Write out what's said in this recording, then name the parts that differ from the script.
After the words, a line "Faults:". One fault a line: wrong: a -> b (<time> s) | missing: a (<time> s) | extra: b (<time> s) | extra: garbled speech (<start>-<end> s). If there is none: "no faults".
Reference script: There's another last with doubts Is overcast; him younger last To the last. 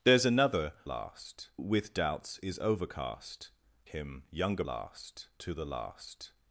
There's another last with doubts Is overcast; him younger last To the last.
Faults:
no faults